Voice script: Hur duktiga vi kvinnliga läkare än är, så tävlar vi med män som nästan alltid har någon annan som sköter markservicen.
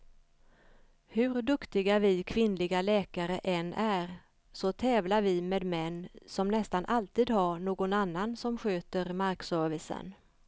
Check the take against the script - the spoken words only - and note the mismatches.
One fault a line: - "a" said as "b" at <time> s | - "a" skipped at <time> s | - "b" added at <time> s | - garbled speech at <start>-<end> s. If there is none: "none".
none